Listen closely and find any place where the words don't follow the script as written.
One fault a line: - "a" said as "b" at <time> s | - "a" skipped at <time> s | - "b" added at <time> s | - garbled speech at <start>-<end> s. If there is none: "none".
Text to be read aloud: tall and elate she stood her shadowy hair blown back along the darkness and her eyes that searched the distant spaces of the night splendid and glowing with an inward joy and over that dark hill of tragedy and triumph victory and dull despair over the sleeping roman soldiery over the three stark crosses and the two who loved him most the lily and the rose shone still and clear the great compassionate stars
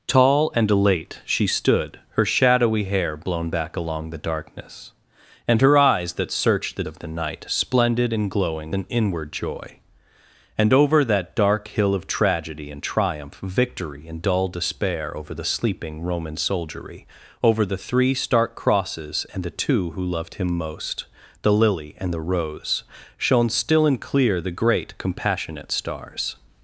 - "distant spaces" skipped at 6.8 s
- "with" skipped at 8.7 s